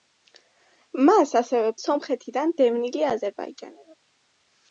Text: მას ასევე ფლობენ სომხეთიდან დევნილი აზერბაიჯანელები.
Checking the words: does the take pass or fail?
fail